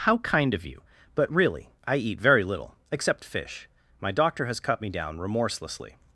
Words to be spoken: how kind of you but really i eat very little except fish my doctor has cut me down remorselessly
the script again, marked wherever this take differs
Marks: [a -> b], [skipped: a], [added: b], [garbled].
how kind of you but really i eat very little except fish my doctor has cut me down remorselessly